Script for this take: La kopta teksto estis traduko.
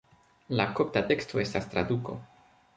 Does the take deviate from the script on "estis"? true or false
true